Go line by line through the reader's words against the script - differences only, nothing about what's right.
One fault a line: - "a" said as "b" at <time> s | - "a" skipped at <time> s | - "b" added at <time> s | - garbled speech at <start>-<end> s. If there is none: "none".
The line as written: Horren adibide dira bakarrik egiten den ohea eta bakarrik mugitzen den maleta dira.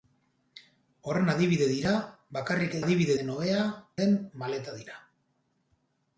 - "egiten" said as "adibide" at 2.8 s
- "eta bakarrik mugitzen" skipped at 3.7 s